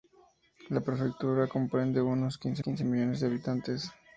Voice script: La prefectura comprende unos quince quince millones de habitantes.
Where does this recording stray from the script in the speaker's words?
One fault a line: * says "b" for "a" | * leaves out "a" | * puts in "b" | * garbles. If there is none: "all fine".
all fine